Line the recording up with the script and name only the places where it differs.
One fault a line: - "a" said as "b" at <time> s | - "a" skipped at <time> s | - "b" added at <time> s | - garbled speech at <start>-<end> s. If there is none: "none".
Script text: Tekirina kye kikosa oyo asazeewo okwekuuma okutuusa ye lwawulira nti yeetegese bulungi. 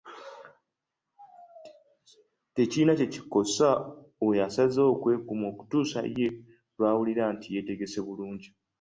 none